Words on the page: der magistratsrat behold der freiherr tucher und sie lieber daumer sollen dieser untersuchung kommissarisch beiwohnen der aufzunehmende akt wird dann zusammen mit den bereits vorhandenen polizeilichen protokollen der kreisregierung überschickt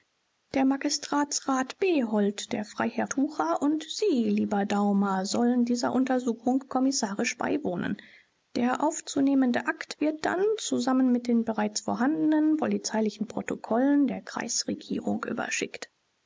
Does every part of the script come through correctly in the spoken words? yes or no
yes